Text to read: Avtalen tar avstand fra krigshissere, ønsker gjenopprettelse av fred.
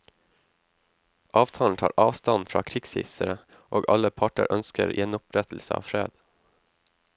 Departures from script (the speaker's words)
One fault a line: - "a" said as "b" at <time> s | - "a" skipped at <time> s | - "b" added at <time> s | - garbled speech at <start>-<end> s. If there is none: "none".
- "og alle parter" added at 3.7 s